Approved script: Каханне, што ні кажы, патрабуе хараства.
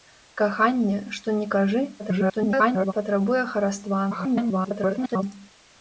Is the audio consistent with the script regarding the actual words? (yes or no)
no